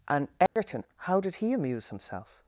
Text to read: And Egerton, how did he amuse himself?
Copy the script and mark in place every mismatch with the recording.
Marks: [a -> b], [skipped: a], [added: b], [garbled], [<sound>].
And Egerton, [dropout] how did he amuse himself?